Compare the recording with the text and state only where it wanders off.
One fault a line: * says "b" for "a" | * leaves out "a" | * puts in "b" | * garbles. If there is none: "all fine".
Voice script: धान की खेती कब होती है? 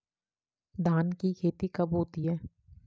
all fine